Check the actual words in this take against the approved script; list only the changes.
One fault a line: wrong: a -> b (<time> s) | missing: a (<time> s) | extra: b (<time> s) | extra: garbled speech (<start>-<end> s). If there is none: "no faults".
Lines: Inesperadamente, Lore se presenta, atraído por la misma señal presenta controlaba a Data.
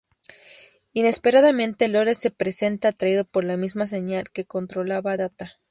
wrong: presenta -> que (4.3 s)